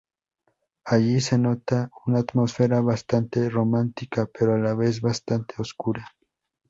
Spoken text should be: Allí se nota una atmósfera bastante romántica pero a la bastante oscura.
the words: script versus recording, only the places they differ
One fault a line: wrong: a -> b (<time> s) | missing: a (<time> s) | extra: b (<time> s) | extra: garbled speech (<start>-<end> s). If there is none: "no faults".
extra: vez (4.7 s)